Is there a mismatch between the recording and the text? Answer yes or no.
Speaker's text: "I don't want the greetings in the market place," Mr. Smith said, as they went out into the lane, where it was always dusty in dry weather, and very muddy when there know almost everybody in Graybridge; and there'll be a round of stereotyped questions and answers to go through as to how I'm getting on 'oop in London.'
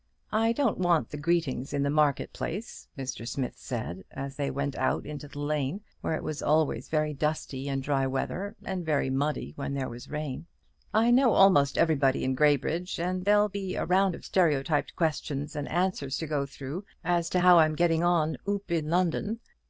yes